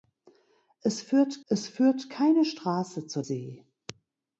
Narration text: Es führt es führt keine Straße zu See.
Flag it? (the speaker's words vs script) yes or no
no